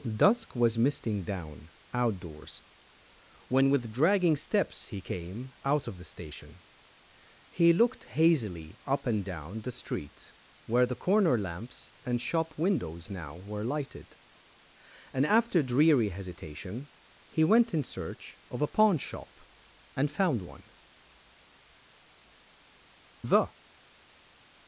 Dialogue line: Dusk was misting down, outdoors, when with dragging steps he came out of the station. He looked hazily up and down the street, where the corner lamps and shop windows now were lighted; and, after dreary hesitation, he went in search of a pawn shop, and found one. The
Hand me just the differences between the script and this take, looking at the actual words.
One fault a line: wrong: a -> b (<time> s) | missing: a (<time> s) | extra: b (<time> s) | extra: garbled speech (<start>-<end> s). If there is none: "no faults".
no faults